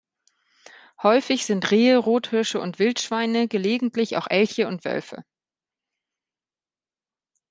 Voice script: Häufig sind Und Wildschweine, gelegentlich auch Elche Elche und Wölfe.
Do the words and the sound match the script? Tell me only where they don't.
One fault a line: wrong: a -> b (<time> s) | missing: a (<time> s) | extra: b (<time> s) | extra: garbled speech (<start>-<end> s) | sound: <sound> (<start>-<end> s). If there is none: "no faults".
extra: Rehe Rothirsche (1.7 s)
missing: Elche (4.7 s)